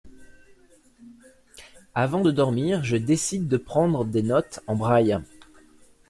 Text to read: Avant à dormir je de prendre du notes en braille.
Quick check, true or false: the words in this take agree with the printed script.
false